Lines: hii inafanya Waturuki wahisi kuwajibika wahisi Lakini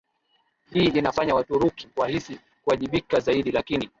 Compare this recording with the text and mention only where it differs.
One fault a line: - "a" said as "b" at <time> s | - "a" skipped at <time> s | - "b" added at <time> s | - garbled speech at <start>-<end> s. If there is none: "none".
- "wahisi" said as "zaidi" at 3.2 s